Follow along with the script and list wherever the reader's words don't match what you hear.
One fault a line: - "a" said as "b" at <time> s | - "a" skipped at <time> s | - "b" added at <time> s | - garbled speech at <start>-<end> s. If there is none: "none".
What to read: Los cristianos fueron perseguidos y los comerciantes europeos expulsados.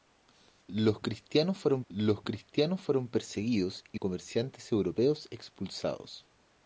- "los cristianos fueron" added at 1.9 s
- "los" skipped at 4.0 s